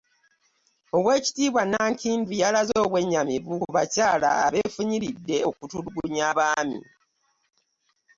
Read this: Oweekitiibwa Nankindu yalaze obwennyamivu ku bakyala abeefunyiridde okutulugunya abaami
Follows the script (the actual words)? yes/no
yes